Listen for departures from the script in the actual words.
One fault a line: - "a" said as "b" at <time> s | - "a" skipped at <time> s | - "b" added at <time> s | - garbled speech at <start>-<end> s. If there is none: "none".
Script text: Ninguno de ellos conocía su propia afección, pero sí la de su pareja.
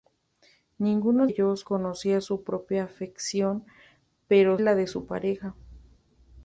- "de" skipped at 1.3 s
- "sí" skipped at 4.6 s